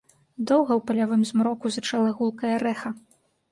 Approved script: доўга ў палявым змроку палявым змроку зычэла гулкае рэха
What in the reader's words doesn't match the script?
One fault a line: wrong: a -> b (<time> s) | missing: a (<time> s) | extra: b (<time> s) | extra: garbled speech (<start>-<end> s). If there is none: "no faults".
missing: палявым змроку (1.6 s)